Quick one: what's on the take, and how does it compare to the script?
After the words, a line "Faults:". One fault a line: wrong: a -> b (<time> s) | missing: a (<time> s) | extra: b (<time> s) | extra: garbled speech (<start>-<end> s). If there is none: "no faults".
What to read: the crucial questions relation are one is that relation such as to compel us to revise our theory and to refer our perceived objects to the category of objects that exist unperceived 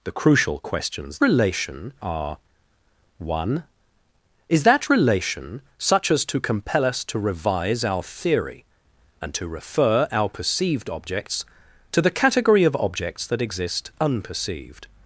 the crucial questions relation are one is that relation such as to compel us to revise our theory and to refer our perceived objects to the category of objects that exist unperceived
Faults:
no faults